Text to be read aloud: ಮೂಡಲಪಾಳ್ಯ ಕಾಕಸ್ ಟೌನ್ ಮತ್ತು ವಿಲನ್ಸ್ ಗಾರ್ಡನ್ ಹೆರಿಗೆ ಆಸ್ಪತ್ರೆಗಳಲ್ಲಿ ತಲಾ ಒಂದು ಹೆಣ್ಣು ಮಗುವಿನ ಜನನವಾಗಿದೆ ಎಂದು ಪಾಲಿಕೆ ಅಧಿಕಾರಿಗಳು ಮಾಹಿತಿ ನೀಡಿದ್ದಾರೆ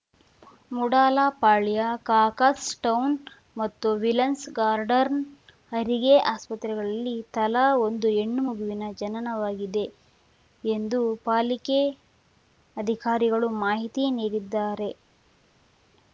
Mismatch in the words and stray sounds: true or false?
false